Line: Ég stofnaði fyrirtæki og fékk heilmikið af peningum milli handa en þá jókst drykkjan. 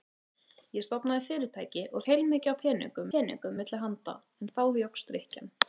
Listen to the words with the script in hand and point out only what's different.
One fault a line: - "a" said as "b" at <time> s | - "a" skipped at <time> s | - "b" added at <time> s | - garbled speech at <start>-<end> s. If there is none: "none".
- "fékk" skipped at 2.0 s
- "peningum" added at 3.2 s